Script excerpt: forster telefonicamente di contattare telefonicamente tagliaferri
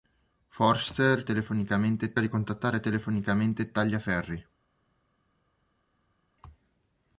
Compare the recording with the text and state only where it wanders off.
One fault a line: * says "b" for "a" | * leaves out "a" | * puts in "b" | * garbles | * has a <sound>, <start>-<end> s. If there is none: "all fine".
all fine